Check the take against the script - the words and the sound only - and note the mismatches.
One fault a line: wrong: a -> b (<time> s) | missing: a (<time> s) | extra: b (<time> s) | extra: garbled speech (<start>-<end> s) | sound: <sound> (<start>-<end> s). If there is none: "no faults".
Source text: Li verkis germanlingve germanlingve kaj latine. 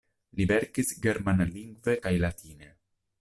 missing: germanlingve (2.0 s)